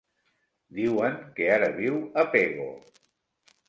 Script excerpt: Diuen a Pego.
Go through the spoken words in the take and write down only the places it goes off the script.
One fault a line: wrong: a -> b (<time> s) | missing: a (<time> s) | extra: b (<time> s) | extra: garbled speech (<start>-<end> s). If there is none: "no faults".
extra: que ara viu (1.4 s)